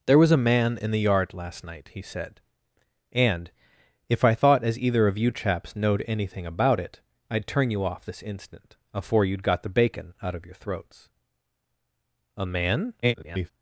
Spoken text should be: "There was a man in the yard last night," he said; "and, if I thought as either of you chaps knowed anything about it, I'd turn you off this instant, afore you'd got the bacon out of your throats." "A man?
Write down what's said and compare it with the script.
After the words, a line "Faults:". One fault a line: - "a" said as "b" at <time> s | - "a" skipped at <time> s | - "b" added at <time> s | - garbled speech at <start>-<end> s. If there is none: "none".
"There was a man in the yard last night," he said; "and, if I thought as either of you chaps knowed anything about it, I'd turn you off this instant, afore you'd got the bacon out of your throats." "A man? [garbled]
Faults:
- garbled speech at 13.0-13.5 s